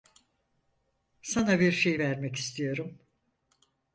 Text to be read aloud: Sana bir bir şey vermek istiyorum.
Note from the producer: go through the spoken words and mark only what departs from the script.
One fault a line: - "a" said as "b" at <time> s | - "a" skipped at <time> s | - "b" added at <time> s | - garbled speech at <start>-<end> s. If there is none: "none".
- "bir" skipped at 1.7 s